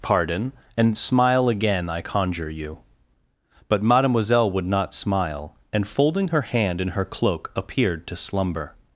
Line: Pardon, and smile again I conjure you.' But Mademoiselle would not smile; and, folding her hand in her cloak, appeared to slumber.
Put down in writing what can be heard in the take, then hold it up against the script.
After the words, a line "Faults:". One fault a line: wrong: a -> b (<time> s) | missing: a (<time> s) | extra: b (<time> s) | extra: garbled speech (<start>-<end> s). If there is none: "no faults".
Pardon, and smile again I conjure you.' But Mademoiselle would not smile; and, folding her hand in her cloak, appeared to slumber.
Faults:
no faults